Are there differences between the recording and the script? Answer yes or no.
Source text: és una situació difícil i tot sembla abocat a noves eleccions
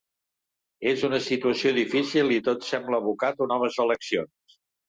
no